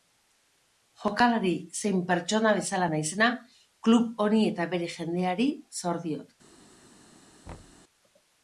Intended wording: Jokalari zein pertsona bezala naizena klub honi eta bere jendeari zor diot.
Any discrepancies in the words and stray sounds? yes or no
yes